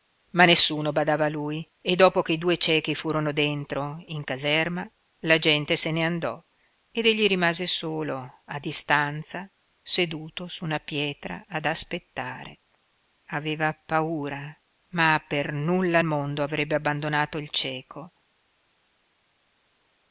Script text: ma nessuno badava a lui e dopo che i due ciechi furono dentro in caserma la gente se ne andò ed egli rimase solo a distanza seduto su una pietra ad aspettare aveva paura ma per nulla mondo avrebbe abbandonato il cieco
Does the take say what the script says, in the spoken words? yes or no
yes